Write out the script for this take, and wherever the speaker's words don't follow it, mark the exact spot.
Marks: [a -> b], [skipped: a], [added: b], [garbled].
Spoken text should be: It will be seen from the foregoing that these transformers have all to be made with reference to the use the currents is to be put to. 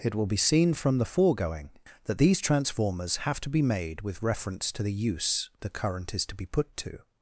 It will be seen from the foregoing that these transformers have [skipped: all] to be made with reference to the use the [currents -> current] is to be put to.